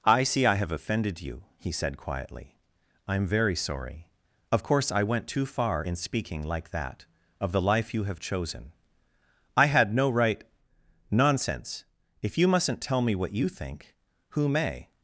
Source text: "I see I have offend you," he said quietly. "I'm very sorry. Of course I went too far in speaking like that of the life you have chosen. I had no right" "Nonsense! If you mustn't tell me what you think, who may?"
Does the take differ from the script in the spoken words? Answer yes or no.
yes